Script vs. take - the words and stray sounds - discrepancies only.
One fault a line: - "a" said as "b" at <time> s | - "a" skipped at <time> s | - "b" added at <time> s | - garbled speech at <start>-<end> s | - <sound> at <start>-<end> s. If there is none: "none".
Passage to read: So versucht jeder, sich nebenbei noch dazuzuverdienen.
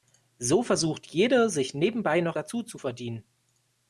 none